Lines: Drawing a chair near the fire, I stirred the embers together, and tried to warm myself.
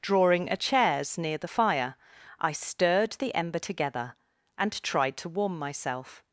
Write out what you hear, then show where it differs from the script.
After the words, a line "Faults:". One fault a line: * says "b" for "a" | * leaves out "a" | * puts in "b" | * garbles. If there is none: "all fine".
Drawing a chairs near the fire, I stirred the ember together, and tried to warm myself.
Faults:
* says "chairs" for "chair"
* says "ember" for "embers"